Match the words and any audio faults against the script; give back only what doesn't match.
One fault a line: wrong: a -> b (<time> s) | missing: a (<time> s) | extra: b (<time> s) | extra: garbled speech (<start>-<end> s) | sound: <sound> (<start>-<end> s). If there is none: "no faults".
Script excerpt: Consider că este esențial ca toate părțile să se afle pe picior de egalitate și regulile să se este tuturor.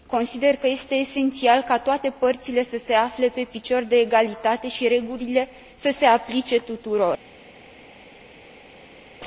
wrong: este -> aplice (6.1 s)